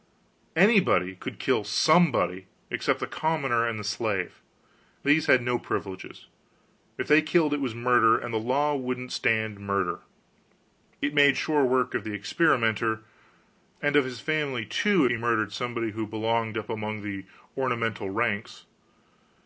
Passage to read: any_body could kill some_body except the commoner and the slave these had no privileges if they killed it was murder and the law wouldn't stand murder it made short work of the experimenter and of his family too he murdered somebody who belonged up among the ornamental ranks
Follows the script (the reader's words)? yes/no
yes